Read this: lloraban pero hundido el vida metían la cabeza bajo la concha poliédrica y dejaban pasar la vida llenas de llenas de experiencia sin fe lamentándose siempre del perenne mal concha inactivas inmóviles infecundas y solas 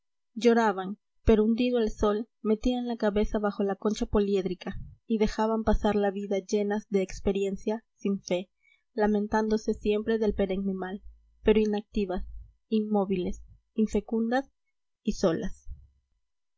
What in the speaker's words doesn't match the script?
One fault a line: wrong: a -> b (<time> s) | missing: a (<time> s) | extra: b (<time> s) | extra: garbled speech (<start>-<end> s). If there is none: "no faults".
wrong: vida -> sol (1.9 s)
missing: llenas de (7.0 s)
wrong: concha -> pero (11.4 s)